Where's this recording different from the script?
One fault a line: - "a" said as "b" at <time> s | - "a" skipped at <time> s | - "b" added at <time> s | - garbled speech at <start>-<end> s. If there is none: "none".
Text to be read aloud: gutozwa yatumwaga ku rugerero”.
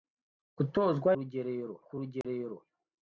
- "yatumwaga" said as "rugerero" at 1.2 s